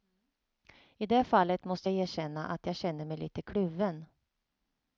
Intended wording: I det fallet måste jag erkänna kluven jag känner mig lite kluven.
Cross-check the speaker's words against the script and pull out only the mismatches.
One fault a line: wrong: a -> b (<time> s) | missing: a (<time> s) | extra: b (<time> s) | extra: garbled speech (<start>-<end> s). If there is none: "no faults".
wrong: kluven -> att (2.5 s)